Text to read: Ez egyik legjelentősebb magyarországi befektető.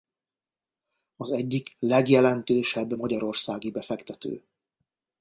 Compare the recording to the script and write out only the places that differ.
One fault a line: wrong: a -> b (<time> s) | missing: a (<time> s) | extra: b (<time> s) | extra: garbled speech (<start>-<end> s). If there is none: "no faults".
wrong: Ez -> Az (1.1 s)